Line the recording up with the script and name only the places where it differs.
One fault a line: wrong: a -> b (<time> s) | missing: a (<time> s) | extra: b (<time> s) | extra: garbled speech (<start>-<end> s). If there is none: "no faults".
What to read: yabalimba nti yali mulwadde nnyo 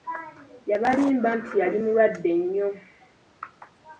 no faults